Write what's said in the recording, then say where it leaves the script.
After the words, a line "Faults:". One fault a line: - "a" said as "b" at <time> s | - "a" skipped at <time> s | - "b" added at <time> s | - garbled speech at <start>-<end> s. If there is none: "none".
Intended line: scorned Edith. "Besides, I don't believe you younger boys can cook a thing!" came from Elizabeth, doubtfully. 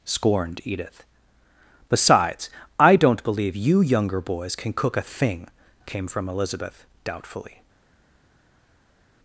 scorned Edith. "Besides, I don't believe you younger boys can cook a thing!" came from Elizabeth, doubtfully.
Faults:
none